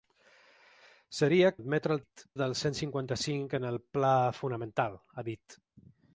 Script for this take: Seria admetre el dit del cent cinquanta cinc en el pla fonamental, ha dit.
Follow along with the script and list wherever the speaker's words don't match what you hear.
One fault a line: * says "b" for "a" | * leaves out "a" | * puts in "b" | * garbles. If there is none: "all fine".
all fine